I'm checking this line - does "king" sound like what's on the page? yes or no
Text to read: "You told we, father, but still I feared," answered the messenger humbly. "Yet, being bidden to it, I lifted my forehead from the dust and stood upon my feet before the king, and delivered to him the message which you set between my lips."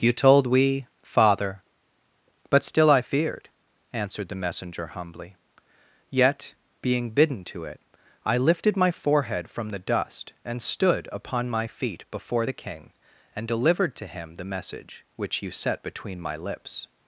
yes